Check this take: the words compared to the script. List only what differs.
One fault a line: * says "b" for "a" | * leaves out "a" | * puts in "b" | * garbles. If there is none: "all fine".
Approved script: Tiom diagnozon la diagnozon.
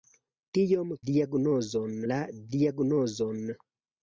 all fine